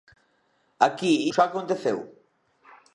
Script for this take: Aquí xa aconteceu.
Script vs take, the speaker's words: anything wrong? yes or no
no